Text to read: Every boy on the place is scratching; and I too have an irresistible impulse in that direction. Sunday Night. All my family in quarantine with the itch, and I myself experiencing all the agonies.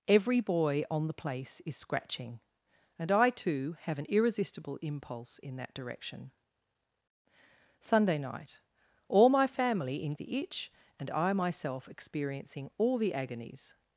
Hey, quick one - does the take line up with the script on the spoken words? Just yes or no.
no